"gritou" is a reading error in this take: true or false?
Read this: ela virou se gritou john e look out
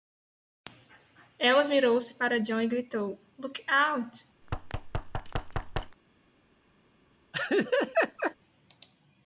true